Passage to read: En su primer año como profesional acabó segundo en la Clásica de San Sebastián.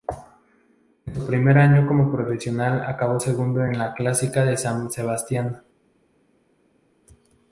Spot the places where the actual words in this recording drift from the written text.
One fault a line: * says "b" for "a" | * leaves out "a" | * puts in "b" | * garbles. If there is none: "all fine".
all fine